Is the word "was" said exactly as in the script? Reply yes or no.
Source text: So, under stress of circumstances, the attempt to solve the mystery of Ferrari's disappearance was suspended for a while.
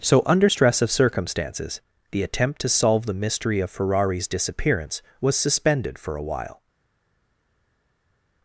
yes